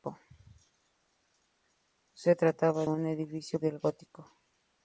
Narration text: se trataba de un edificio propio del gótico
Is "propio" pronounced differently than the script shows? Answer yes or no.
yes